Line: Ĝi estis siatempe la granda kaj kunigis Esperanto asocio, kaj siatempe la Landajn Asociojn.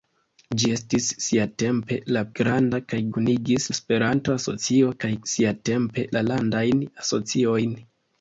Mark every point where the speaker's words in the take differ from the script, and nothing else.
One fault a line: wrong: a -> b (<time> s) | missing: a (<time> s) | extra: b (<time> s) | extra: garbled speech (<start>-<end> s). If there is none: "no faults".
no faults